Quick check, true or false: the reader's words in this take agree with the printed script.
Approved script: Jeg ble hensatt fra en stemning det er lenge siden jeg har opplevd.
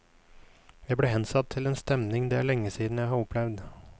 false